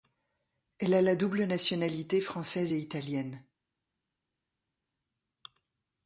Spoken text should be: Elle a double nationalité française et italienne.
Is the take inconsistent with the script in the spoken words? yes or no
yes